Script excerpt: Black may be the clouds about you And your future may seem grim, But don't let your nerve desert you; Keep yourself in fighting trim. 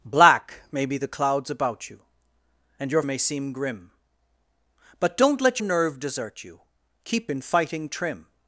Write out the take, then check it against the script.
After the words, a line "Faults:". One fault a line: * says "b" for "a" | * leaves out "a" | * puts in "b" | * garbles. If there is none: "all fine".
Black may be the clouds about you And your may seem grim, But don't let nerve desert you; Keep in fighting trim.
Faults:
* leaves out "future"
* leaves out "your"
* leaves out "yourself"